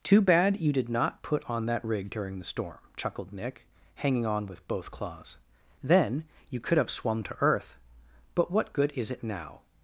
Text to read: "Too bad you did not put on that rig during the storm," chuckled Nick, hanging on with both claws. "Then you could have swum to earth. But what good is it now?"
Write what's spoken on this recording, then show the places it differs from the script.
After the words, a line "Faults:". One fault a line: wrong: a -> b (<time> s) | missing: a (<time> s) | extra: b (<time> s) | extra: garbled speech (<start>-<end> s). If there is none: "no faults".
"Too bad you did not put on that rig during the storm," chuckled Nick, hanging on with both claws. "Then you could have swum to earth. But what good is it now?"
Faults:
no faults